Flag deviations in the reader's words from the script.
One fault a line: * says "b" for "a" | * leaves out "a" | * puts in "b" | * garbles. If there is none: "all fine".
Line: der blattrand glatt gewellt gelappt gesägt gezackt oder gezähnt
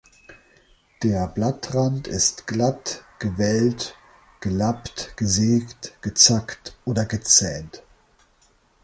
* puts in "ist"